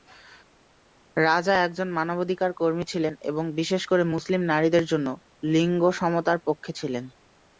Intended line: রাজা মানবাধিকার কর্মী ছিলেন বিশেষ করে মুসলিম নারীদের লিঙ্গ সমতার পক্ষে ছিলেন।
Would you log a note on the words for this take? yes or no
yes